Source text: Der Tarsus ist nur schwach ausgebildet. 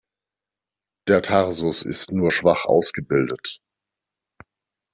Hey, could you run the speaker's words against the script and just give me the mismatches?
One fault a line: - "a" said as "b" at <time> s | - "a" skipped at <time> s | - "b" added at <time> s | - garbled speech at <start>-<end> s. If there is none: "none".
none